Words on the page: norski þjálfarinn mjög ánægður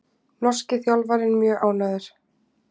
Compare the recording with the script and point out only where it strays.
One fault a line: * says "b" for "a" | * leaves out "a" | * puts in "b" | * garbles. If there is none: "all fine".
all fine